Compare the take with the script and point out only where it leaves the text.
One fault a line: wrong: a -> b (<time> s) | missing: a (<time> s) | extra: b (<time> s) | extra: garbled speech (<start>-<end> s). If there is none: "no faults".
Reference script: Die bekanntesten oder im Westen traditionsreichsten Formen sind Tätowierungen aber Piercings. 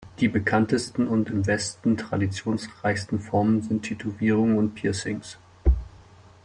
wrong: oder -> und (1.1 s)
wrong: aber -> und (4.6 s)